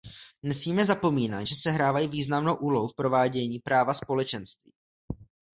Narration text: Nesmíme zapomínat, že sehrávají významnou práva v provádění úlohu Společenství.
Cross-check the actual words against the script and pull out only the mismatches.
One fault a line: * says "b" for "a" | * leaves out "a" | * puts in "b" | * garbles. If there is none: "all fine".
* says "úlohu" for "práva"
* says "práva" for "úlohu"